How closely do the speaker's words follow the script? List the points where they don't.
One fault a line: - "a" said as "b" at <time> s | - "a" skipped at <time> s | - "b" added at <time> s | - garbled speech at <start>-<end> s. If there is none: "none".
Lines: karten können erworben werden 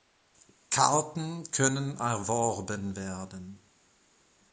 none